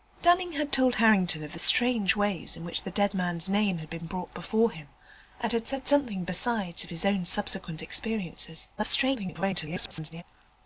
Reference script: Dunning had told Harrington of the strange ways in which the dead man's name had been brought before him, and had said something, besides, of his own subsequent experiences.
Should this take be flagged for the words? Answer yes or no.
yes